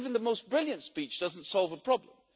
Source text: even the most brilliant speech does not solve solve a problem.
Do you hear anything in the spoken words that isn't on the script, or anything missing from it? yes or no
yes